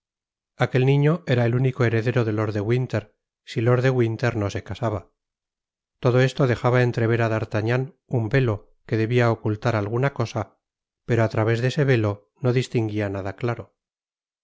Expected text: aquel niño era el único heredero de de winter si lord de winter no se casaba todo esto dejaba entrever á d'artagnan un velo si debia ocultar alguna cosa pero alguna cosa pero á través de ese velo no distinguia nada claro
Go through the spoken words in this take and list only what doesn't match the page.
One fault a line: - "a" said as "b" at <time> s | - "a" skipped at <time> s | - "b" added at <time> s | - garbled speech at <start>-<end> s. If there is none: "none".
- "lord" added at 2.3 s
- "si" said as "que" at 8.9 s
- "alguna cosa pero" skipped at 11.2 s